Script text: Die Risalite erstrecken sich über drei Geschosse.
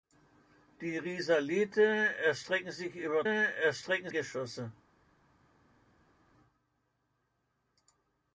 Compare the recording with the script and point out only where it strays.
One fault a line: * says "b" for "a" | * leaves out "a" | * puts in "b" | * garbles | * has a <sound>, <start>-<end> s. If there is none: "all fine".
* says "erstrecken" for "drei"